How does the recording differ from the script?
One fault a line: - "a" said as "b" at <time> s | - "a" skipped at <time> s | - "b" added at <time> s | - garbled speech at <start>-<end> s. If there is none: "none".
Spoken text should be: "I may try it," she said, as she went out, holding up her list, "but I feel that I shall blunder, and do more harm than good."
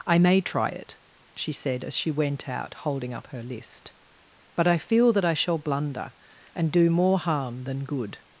none